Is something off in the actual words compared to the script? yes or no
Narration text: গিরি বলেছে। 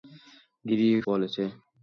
no